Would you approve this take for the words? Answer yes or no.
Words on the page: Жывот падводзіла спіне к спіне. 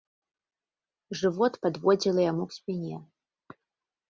no